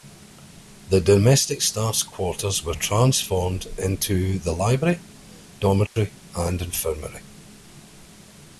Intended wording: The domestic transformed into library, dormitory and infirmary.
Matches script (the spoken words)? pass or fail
fail